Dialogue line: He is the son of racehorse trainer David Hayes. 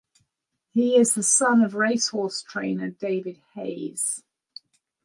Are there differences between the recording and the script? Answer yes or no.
no